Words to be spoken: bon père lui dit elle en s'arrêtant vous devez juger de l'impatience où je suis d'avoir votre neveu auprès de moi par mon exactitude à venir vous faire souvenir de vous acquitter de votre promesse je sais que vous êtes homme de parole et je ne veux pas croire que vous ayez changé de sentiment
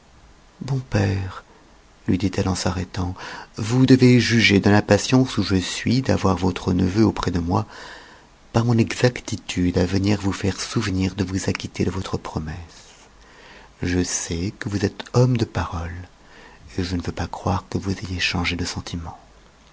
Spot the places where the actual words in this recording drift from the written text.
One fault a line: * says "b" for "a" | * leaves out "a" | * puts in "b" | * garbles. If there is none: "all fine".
all fine